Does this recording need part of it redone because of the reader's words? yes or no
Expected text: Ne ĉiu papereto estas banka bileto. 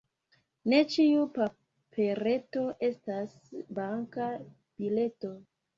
no